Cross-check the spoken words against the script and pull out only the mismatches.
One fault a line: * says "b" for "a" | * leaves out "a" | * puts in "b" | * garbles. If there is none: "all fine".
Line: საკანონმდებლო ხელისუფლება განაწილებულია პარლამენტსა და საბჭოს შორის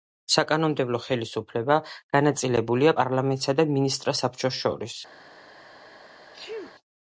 * puts in "მინისტრთა"